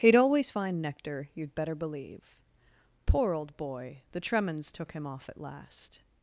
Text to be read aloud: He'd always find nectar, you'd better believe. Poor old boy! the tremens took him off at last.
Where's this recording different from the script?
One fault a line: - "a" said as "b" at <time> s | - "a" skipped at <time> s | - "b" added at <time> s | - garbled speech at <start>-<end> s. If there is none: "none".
none